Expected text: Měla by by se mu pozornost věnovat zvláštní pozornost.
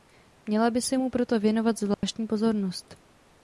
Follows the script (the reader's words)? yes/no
no